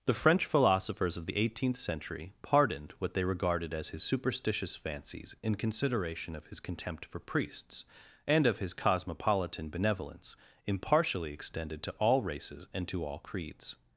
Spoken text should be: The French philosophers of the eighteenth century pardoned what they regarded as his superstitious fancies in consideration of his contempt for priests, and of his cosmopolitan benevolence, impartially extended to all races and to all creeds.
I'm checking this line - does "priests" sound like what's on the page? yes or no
yes